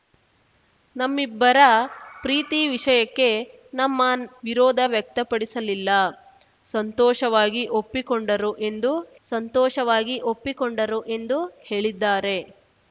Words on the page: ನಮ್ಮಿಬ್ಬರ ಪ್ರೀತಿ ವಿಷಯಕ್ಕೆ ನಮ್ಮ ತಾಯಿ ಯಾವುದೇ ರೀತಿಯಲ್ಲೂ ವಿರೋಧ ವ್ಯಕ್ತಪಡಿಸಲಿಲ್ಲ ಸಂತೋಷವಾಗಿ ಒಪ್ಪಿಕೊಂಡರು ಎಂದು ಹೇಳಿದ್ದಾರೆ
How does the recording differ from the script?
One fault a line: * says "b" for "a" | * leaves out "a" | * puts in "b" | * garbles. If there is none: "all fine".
* says "ವಿರೋಧ ವ್ಯಕ್ತಪಡಿಸಲಿಲ್ಲ ಸಂತೋಷವಾಗಿ ಒಪ್ಪಿಕೊಂಡರು ಎಂದು" for "ತಾಯಿ ಯಾವುದೇ ರೀತಿಯಲ್ಲೂ ವಿರೋಧ ವ್ಯಕ್ತಪಡಿಸಲಿಲ್ಲ"